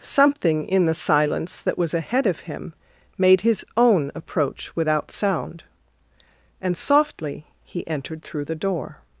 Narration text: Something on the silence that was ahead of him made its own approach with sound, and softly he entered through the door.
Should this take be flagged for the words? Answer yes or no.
yes